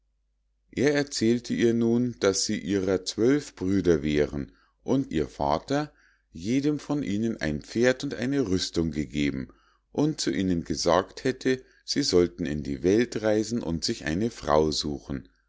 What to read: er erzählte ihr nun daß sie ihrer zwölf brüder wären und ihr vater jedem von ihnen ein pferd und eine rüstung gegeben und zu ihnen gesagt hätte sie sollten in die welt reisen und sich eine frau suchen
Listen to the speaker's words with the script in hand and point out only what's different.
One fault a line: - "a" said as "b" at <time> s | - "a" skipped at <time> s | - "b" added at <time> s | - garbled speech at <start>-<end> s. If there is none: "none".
none